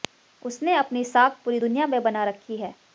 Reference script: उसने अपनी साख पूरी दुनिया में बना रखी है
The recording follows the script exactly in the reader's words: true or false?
true